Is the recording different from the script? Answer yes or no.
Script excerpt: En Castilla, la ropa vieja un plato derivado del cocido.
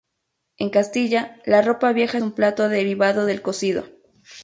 no